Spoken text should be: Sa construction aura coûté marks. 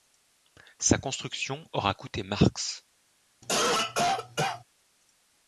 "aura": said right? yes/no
yes